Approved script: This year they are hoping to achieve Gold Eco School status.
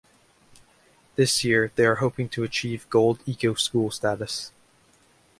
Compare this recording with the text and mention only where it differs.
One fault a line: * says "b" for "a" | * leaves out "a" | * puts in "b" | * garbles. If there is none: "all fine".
all fine